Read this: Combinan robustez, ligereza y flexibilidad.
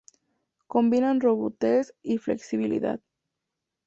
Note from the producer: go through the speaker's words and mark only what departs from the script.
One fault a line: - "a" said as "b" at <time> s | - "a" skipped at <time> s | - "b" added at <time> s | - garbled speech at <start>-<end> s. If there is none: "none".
- "ligereza" skipped at 1.9 s